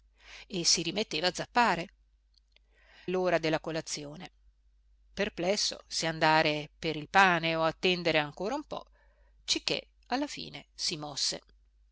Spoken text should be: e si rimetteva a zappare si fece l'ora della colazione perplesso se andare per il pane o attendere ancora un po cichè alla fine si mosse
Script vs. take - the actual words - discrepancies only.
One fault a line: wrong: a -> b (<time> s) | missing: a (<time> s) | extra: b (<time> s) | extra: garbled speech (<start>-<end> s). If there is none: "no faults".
missing: si fece (1.9 s)